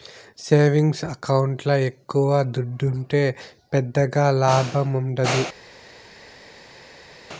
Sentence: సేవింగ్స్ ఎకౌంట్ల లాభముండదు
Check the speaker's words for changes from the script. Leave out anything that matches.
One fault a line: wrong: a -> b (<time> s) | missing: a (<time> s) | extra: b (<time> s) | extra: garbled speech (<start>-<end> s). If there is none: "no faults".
extra: ఎక్కవ దుడ్డుంటే పెద్దగా (1.9 s)